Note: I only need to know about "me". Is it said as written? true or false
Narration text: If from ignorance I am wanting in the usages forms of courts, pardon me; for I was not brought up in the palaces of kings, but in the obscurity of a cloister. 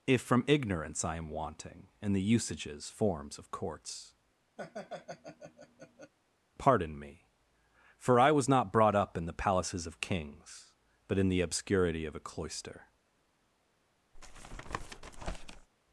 true